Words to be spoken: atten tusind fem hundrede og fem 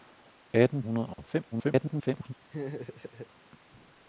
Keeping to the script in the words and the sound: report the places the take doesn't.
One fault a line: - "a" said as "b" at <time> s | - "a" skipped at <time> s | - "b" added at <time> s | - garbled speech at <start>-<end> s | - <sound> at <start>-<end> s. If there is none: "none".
- "tusind fem" skipped at 0.8 s
- dropout at 1.1-1.2 s
- garbled speech at 1.5-2.3 s
- laugh at 2.5-3.3 s